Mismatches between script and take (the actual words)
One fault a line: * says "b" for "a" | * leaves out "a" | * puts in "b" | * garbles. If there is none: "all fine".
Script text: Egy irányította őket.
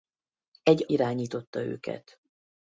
all fine